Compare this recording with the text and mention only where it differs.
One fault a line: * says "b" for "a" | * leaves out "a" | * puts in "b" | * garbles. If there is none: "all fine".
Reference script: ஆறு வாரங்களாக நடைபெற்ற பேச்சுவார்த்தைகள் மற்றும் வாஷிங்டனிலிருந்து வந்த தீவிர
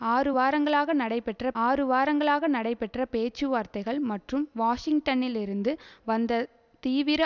* puts in "ஆறு வாரங்களாக நடைபெற்ற"